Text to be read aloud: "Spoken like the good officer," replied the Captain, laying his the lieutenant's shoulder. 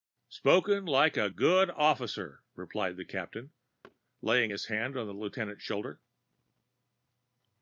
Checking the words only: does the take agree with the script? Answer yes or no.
no